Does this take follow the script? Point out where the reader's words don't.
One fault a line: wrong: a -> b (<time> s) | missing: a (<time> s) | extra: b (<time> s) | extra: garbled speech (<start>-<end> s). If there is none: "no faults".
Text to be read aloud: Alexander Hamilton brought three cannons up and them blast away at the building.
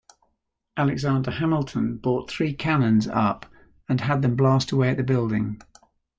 extra: had (4.0 s)